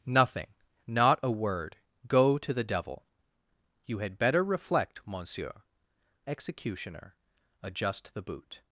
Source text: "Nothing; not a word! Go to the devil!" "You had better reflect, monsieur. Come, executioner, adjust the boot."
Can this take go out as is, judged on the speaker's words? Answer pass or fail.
fail